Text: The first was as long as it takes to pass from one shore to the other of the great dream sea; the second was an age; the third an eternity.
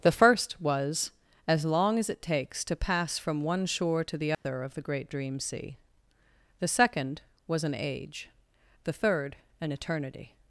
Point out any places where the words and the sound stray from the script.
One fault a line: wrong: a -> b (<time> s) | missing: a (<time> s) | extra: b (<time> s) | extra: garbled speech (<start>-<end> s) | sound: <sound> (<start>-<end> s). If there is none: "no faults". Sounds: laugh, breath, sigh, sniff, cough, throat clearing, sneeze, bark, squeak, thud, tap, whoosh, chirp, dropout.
sound: dropout (4.3-4.4 s)